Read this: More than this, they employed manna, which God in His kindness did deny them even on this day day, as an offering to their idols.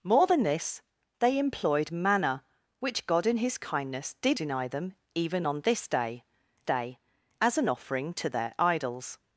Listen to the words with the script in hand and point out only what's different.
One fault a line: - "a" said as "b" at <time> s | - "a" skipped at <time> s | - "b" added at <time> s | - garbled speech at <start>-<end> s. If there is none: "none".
none